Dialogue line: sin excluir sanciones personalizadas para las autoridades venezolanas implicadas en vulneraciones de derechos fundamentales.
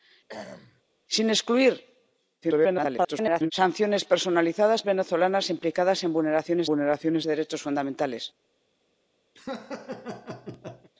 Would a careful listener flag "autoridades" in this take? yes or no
yes